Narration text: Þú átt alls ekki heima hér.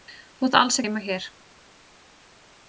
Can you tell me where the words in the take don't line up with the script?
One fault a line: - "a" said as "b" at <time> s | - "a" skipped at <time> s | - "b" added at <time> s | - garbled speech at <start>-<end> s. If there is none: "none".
- "ekki" skipped at 0.8 s